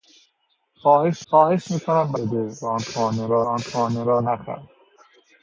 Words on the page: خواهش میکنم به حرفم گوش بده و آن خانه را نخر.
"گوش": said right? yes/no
no